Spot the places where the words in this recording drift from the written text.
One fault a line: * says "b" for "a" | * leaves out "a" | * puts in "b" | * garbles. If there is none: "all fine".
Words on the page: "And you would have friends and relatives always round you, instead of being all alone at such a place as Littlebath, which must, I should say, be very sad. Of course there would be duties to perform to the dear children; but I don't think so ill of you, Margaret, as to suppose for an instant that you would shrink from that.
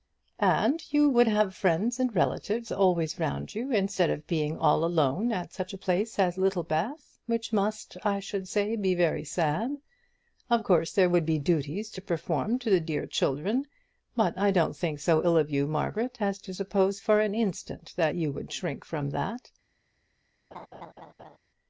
all fine